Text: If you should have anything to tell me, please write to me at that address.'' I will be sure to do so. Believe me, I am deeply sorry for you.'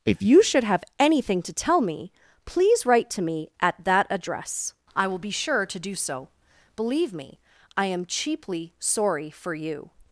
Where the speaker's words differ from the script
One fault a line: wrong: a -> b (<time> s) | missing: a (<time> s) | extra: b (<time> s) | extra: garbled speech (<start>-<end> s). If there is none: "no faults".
wrong: deeply -> cheaply (8.1 s)